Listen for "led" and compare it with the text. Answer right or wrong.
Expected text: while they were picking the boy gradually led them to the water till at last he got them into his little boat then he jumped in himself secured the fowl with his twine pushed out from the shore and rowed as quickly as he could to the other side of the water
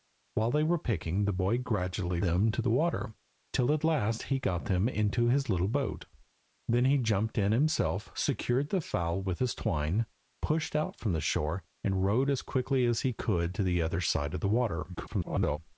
wrong